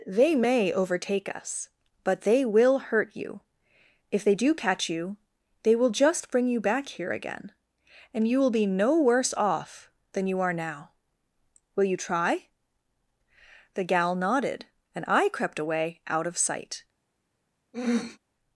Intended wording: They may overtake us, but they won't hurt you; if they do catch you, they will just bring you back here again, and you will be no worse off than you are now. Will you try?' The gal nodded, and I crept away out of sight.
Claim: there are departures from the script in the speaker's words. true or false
true